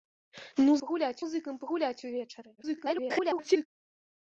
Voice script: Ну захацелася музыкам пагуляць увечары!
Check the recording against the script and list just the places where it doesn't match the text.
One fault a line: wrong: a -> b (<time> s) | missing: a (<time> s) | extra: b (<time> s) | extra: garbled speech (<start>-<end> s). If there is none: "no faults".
wrong: захацелася -> пагуляць (0.9 s)
extra: garbled speech (2.6-3.7 s)